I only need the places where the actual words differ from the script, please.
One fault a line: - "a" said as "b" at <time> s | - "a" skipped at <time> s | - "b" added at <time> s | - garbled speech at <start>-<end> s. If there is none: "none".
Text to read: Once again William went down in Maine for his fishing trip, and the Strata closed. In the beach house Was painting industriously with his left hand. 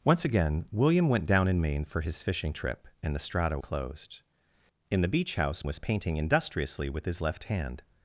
none